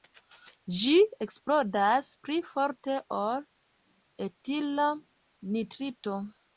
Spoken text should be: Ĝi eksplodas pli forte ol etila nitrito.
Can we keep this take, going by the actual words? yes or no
yes